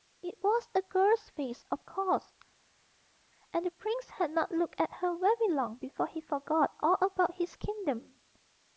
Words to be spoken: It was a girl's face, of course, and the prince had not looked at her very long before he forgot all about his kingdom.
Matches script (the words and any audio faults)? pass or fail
pass